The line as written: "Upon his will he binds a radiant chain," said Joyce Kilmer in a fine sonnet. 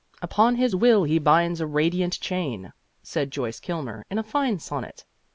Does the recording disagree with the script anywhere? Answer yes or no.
no